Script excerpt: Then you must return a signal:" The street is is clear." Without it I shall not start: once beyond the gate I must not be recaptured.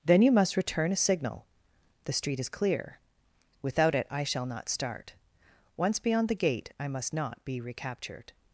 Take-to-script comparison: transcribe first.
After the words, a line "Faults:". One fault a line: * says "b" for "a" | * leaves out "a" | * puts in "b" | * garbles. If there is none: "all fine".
Then you must return a signal:" The street is clear." Without it I shall not start: once beyond the gate I must not be recaptured.
Faults:
* leaves out "is"